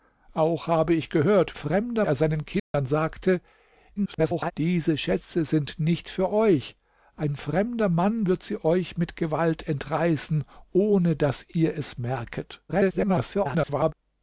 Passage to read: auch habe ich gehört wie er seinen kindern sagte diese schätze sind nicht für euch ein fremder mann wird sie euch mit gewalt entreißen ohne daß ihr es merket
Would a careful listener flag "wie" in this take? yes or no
yes